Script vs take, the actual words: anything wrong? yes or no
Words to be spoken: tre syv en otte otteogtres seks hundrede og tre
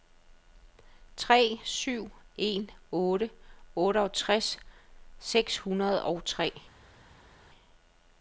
no